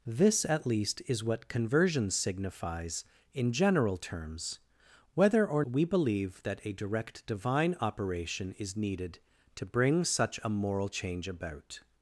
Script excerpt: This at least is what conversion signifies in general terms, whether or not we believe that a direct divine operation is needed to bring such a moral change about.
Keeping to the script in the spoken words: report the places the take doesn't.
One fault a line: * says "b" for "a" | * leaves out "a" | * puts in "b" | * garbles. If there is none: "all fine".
* leaves out "not"